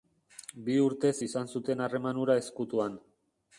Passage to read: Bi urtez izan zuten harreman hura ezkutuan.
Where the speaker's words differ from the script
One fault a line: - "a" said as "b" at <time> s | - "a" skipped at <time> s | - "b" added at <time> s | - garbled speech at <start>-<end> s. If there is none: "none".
none